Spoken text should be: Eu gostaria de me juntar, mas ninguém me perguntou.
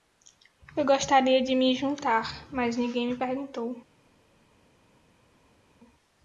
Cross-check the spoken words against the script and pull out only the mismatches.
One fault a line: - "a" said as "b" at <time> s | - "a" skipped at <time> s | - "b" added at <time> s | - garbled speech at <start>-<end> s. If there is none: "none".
none